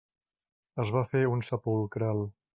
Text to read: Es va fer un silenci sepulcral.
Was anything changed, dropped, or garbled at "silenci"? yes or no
yes